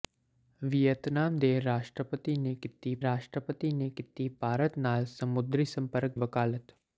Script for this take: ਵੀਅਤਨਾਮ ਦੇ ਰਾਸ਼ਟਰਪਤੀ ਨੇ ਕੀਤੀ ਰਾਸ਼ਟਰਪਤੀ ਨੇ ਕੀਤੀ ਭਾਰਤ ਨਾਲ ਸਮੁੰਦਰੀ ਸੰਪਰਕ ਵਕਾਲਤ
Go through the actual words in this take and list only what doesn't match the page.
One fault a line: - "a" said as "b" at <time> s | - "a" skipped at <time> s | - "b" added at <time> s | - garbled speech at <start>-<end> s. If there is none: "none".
none